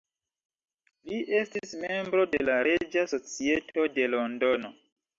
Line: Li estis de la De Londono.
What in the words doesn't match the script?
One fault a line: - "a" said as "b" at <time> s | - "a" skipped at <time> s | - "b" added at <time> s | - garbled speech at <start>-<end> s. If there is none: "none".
- "membro" added at 1.8 s
- "Reĝa Societo" added at 2.7 s